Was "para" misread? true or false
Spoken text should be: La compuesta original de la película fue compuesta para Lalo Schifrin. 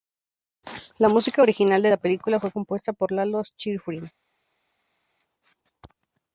true